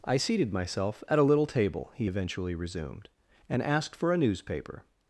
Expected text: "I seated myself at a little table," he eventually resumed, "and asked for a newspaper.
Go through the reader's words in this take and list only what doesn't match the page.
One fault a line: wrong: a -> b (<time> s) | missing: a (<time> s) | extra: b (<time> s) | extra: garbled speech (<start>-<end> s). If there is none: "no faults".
no faults